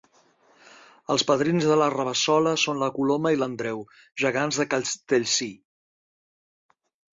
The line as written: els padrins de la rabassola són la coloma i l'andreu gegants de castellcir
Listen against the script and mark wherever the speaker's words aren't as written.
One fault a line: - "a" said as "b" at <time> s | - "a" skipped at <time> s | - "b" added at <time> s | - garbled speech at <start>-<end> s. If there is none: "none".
none